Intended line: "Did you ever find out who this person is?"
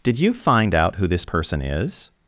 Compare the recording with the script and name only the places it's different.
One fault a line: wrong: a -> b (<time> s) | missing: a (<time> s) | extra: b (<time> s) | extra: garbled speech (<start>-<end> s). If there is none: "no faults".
missing: ever (0.3 s)